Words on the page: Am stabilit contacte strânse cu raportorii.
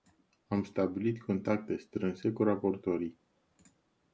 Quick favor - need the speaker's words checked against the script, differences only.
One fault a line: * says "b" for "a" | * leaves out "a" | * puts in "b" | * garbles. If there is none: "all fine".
all fine